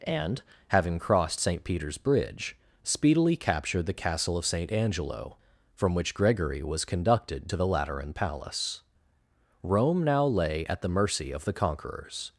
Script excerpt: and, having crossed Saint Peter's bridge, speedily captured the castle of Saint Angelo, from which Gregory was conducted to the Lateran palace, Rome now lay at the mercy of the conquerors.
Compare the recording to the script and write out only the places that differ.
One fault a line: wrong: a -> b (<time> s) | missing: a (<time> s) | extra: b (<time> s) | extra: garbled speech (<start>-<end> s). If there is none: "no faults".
no faults